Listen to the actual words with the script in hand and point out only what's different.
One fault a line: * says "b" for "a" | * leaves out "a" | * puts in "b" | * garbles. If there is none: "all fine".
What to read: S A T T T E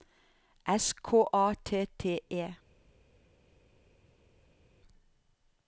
* puts in "K"
* leaves out "T"